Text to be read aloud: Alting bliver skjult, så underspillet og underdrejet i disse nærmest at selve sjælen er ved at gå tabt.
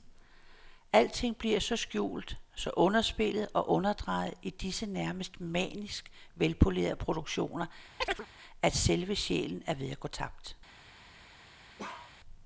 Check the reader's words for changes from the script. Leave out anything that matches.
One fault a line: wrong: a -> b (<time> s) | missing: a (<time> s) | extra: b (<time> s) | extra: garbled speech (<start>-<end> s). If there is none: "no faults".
extra: så (1.6 s)
extra: manisk velpolerede produktioner (5.4 s)